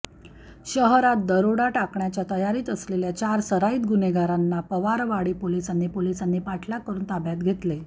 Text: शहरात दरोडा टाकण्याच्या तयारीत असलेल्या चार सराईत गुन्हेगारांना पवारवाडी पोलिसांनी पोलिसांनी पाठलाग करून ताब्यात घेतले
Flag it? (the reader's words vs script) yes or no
no